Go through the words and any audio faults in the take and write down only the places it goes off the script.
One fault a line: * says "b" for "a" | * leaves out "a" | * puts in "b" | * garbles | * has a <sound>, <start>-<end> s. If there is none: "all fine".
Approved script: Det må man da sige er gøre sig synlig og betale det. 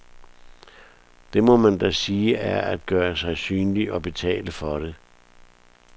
* puts in "at"
* puts in "for"